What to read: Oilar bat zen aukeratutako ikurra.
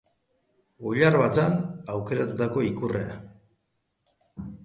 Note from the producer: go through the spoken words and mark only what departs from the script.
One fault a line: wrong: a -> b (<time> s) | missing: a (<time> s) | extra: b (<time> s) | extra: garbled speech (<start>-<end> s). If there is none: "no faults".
no faults